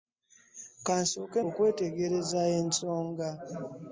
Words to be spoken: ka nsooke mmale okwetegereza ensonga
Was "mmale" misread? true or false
true